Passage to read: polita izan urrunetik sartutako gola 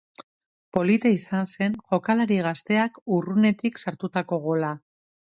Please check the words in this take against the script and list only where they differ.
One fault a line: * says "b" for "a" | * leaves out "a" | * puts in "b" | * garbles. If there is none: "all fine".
* puts in "zen jokalari gazteak"